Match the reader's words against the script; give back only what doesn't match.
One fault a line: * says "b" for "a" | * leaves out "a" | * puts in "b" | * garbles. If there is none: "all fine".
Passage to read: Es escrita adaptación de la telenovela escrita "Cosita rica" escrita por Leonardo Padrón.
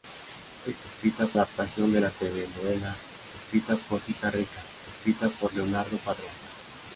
all fine